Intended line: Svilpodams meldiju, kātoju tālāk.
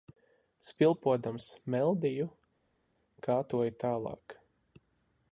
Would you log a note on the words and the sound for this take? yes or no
no